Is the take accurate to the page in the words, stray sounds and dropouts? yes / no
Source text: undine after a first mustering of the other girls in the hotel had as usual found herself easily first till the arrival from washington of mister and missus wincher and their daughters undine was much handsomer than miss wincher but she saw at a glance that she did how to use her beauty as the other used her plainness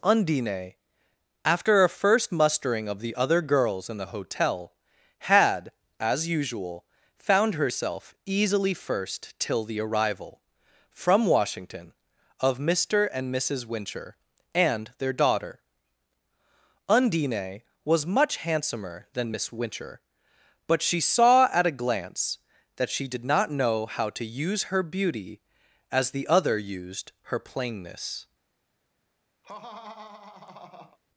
no